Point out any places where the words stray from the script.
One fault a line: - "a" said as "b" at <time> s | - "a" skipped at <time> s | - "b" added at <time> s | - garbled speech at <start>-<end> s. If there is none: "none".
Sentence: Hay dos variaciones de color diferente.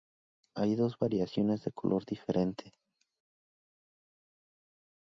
none